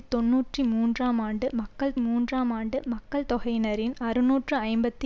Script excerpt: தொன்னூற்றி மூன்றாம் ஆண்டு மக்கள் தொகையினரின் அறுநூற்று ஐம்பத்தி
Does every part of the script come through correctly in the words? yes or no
no